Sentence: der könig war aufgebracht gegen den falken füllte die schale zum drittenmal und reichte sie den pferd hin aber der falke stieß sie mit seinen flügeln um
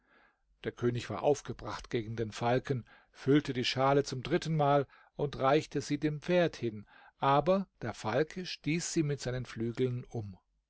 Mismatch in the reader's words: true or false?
true